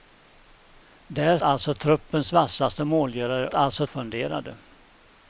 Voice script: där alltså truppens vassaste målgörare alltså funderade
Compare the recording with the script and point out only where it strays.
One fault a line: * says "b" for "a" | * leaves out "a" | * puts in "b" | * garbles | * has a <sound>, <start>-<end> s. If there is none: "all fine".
all fine